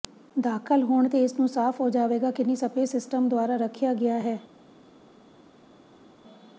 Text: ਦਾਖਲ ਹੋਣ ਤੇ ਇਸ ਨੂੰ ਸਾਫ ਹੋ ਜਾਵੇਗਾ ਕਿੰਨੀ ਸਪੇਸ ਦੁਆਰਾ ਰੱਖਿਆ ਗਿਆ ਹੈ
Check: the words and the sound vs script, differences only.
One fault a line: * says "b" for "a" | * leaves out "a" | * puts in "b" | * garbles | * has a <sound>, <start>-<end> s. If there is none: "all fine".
* puts in "ਸਿਸਟਮ"